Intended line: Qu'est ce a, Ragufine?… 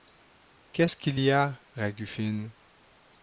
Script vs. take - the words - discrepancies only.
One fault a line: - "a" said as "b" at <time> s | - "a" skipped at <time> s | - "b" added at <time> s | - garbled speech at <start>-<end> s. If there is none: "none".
- "qu'il y" added at 0.9 s